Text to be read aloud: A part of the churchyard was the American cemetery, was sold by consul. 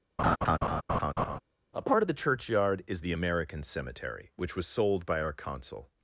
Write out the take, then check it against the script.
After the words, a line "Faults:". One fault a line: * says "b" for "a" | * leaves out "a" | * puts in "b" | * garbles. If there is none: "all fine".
A part of the churchyard is the American cemetery, which was sold by our consul.
Faults:
* says "is" for "was"
* puts in "which"
* puts in "our"